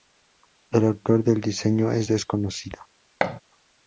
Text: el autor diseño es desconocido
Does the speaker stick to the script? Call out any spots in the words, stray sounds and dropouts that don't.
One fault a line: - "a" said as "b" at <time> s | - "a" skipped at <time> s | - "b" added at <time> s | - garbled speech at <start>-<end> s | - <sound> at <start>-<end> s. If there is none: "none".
- "del" added at 1.2 s
- thud at 3.2-3.4 s